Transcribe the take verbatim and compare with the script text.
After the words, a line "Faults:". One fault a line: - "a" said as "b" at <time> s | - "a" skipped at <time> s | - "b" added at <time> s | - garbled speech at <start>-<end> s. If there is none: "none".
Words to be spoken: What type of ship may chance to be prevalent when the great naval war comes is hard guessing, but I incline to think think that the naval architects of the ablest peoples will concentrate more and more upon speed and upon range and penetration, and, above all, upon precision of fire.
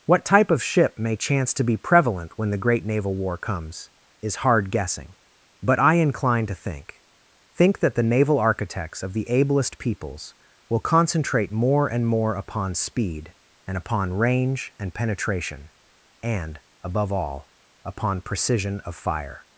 What type of ship may chance to be prevalent when the great naval war comes is hard guessing, but I incline to think think that the naval architects of the ablest peoples will concentrate more and more upon speed and upon range and penetration, and, above all, upon precision of fire.
Faults:
none